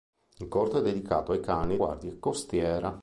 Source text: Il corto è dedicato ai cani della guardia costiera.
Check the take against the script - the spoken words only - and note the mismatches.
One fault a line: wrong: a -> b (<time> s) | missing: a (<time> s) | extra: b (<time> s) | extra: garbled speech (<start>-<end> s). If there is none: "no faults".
missing: della (1.8 s)